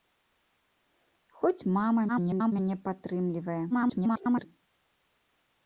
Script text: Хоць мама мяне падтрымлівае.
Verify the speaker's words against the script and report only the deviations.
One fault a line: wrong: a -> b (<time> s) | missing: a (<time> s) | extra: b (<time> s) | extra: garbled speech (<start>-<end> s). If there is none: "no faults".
extra: garbled speech (2.1-2.5 s)
extra: garbled speech (3.7-4.5 s)